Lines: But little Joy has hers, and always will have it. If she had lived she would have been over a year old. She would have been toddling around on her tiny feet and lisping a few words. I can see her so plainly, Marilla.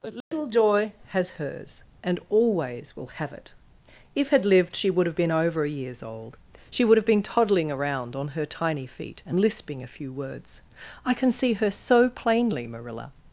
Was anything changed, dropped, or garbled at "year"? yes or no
yes